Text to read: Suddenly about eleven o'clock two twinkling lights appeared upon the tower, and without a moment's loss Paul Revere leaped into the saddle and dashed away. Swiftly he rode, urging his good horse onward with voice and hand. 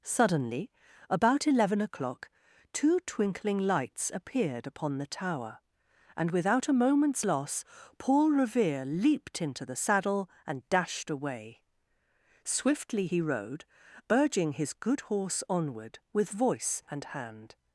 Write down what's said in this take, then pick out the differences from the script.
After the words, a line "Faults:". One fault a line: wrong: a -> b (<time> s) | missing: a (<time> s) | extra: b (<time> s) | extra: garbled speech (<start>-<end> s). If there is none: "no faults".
Suddenly about eleven o'clock two twinkling lights appeared upon the tower, and without a moment's loss Paul Revere leaped into the saddle and dashed away. Swiftly he rode, urging his good horse onward with voice and hand.
Faults:
no faults